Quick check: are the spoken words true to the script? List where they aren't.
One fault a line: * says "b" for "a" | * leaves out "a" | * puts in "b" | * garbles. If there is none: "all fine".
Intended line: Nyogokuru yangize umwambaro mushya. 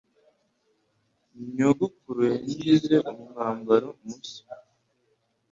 all fine